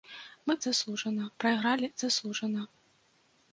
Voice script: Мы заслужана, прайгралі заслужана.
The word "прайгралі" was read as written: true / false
true